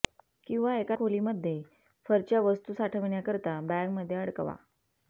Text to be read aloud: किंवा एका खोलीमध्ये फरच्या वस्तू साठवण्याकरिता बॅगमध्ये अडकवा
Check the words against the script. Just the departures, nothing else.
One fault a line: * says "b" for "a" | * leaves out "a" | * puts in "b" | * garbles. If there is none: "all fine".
all fine